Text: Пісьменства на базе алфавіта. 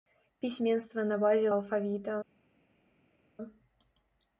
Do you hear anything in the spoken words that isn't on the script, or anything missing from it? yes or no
no